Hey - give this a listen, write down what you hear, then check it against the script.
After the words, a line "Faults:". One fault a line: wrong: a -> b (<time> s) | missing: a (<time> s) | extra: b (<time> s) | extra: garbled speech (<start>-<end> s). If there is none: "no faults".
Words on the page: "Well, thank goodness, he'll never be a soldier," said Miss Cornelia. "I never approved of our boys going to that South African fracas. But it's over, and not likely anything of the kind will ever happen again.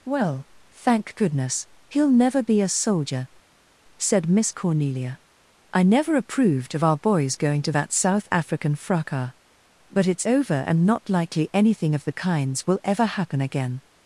"Well, thank goodness, he'll never be a soldier," said Miss Cornelia. "I never approved of our boys going to that South African fracas. But it's over, and not likely anything of the kinds will ever happen again.
Faults:
wrong: kind -> kinds (12.1 s)